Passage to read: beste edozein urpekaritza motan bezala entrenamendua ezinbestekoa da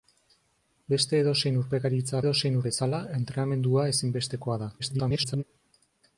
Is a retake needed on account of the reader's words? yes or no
yes